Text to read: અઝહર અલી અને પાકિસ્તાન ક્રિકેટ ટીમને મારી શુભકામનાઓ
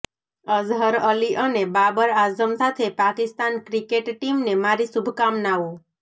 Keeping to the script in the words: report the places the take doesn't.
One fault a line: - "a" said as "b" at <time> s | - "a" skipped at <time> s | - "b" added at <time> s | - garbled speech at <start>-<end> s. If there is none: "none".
- "બાબર આઝમ સાથે" added at 1.8 s